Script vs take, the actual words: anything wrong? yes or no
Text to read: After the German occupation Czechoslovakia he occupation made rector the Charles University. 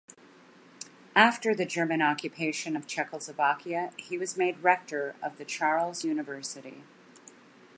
yes